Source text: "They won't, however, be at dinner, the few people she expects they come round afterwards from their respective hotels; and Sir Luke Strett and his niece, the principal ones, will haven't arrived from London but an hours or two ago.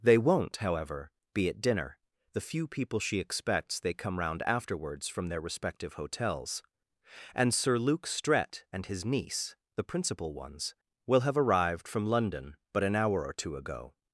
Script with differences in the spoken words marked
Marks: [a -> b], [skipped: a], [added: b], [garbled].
"They won't, however, be at dinner, the few people she expects they come round afterwards from their respective hotels; and Sir Luke Strett and his niece, the principal ones, will [haven't -> have] arrived from London but an [hours -> hour] or two ago.